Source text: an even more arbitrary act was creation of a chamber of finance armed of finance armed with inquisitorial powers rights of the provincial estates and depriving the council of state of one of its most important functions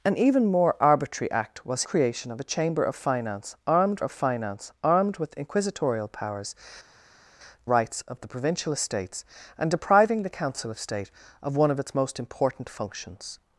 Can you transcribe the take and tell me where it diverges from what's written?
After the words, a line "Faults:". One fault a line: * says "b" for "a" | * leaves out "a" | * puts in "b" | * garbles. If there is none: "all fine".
an even more arbitrary act was creation of a chamber of finance armed of finance armed with inquisitorial powers rights of the provincial estates and depriving the council of state of one of its most important functions
Faults:
all fine